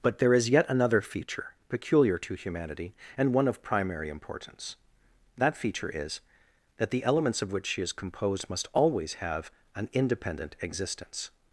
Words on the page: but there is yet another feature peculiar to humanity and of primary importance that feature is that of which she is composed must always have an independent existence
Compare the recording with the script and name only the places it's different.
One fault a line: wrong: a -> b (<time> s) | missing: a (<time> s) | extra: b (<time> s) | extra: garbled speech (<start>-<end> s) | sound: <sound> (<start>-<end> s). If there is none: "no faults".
extra: one (3.3 s)
extra: the elements (6.9 s)